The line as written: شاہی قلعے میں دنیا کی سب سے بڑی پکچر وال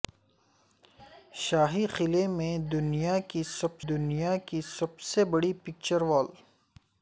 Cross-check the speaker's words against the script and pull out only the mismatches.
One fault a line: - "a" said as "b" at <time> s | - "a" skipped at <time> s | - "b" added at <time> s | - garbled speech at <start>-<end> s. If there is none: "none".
- "دنیا کی سب" added at 3.9 s